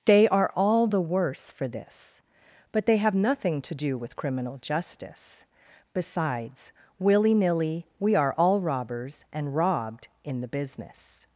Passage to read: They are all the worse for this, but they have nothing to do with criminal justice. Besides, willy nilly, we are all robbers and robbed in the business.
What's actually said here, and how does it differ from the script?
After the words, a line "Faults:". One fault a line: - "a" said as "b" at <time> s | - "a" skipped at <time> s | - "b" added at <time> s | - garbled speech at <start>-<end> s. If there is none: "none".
They are all the worse for this, but they have nothing to do with criminal justice. Besides, willy nilly, we are all robbers and robbed in the business.
Faults:
none